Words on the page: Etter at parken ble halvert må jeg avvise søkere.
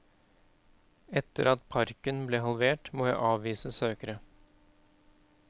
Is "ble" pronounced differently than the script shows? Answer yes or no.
no